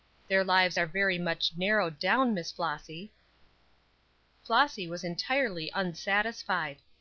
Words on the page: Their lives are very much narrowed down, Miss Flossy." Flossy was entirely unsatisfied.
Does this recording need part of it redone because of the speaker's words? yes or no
no